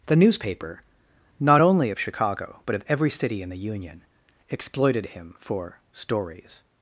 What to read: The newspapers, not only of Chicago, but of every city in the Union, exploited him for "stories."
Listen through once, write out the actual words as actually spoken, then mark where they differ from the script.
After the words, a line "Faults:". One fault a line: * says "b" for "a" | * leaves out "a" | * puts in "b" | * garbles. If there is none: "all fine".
The newspaper, not only of Chicago, but of every city in the Union, exploited him for "stories."
Faults:
* says "newspaper" for "newspapers"